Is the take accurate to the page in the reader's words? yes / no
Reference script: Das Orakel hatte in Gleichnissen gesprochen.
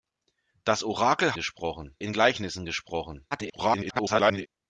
no